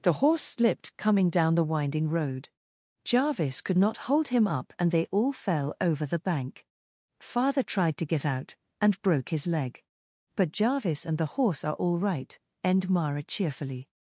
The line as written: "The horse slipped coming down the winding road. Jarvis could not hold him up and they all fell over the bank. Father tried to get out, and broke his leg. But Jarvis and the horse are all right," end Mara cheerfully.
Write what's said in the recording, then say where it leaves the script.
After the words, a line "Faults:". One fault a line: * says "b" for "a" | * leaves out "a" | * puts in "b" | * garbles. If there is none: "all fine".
"The horse slipped coming down the winding road. Jarvis could not hold him up and they all fell over the bank. Father tried to get out, and broke his leg. But Jarvis and the horse are all right," end Mara cheerfully.
Faults:
all fine